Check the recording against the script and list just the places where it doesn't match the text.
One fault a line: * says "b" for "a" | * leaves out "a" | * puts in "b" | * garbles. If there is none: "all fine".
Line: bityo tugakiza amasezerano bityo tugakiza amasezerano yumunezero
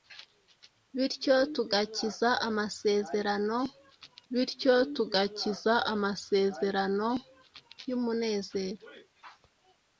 all fine